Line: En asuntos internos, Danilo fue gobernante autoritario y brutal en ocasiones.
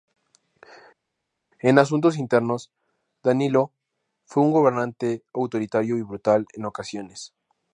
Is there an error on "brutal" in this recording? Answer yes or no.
no